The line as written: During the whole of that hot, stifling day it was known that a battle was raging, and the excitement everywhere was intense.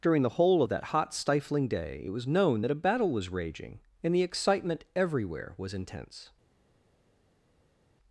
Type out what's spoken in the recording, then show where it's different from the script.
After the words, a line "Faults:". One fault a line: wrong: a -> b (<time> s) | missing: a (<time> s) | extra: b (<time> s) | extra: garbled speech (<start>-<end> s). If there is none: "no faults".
During the whole of that hot, stifling day it was known that a battle was raging, and the excitement everywhere was intense.
Faults:
no faults